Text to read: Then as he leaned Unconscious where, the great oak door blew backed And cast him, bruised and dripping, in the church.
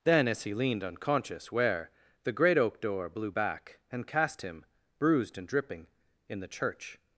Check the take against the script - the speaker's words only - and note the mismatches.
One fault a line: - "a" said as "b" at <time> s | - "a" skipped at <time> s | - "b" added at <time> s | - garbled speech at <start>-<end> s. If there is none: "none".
- "backed" said as "back" at 3.3 s